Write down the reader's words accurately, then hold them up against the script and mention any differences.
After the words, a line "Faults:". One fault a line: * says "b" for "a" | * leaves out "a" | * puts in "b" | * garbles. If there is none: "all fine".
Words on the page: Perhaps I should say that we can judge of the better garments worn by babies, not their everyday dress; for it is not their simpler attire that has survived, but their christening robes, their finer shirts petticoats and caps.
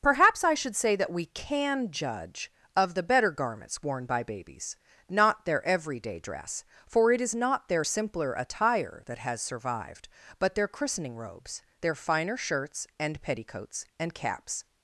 Perhaps I should say that we can judge of the better garments worn by babies, not their everyday dress; for it is not their simpler attire that has survived, but their christening robes, their finer shirts and petticoats and caps.
Faults:
* puts in "and"